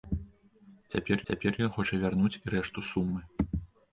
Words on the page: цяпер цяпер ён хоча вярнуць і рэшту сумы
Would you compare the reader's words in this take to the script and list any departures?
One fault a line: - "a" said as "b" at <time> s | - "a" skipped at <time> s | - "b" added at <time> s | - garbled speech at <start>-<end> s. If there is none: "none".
none